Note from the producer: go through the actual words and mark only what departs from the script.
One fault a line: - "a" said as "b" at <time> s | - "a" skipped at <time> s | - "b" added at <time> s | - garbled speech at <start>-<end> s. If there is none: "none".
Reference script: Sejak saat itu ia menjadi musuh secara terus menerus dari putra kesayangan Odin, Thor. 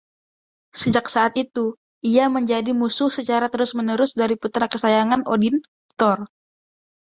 none